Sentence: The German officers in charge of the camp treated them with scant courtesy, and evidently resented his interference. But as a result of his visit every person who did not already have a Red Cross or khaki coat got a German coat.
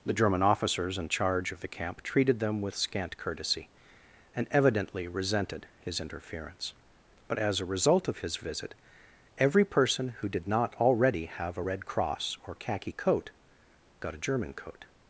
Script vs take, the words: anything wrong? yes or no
no